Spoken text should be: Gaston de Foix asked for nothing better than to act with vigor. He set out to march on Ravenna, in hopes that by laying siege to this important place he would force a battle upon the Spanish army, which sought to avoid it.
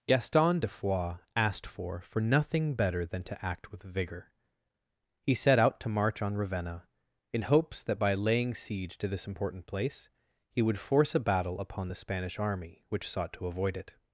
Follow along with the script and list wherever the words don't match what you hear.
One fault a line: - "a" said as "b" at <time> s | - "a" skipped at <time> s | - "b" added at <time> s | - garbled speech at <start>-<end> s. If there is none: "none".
- "for" added at 2.0 s